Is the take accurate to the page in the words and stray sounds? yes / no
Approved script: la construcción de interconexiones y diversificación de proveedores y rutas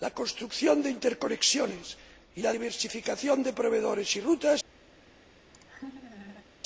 no